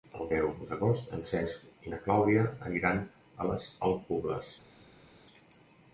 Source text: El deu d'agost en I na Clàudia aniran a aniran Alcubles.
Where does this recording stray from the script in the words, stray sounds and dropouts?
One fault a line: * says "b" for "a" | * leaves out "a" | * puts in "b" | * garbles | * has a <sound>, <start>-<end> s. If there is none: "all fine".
* puts in "Cesc"
* says "les" for "aniran"